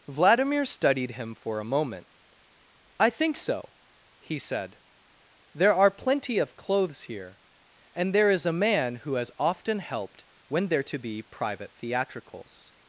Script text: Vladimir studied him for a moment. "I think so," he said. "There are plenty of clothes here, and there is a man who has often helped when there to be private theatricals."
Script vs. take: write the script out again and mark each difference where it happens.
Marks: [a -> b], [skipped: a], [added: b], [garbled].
Vladimir studied him for a moment. "I think so," he said. "There are plenty of clothes here, and there is a man who has often helped when there to be private theatricals."